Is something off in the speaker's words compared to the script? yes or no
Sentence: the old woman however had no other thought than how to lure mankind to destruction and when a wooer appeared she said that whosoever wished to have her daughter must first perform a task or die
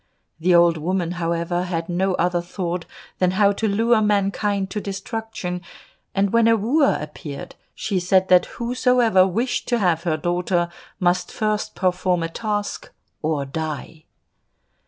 no